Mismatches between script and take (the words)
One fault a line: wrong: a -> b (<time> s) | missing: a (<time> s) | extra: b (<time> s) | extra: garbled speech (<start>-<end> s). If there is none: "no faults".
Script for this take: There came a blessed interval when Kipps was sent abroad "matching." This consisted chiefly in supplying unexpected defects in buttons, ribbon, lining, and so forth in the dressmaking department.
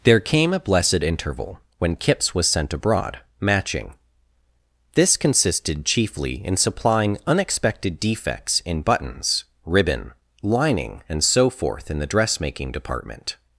no faults